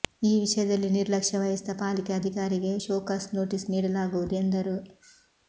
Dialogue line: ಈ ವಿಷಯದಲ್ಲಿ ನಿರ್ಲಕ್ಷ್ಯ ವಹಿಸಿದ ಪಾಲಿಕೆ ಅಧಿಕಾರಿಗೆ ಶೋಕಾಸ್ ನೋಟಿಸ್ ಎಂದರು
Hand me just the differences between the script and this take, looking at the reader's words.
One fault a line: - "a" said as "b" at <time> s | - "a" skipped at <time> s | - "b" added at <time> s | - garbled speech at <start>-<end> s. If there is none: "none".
- "ನೀಡಲಾಗುವುದು" added at 3.7 s